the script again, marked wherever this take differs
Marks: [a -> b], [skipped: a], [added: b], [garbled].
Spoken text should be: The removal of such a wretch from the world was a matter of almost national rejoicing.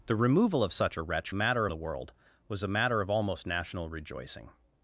The removal of such a wretch [from -> matter] the world was a matter of almost national rejoicing.